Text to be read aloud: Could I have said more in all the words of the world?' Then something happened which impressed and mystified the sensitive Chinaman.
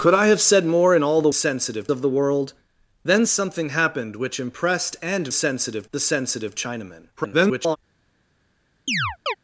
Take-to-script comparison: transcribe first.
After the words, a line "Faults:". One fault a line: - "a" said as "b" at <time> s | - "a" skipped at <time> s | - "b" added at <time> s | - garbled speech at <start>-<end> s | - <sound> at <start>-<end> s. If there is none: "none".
Could I have said more in all the sensitive of the world?' Then something happened which impressed and sensitive the sensitive Chinaman. [garbled]
Faults:
- "words" said as "sensitive" at 1.3 s
- "mystified" said as "sensitive" at 5.3 s
- garbled speech at 7.2-7.8 s
- chirp at 8.9-9.3 s